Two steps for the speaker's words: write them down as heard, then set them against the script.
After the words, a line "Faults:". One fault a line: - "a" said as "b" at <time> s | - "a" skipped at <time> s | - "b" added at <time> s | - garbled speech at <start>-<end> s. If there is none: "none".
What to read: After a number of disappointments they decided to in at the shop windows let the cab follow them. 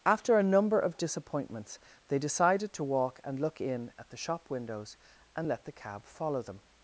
After a number of disappointments they decided to walk and look in at the shop windows and let the cab follow them.
Faults:
- "walk and look" added at 2.8 s
- "and" added at 5.3 s